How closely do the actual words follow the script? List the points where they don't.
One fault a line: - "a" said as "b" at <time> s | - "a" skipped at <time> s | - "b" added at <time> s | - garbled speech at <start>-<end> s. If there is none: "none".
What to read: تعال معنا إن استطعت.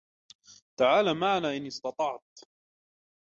none